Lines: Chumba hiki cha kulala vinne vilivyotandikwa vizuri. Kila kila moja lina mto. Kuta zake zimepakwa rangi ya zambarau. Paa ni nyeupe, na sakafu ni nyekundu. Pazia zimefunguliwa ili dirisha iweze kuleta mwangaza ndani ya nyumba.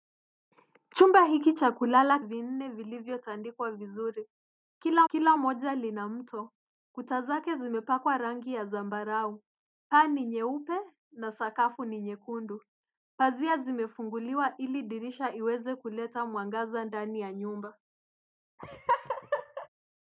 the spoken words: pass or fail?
pass